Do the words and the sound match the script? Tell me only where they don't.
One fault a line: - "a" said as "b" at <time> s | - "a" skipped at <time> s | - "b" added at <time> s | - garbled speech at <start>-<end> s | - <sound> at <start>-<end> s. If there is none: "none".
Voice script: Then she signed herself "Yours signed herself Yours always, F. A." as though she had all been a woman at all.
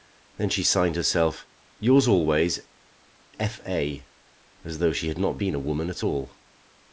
- "signed herself Yours" skipped at 2.1 s
- "all" said as "not" at 5.2 s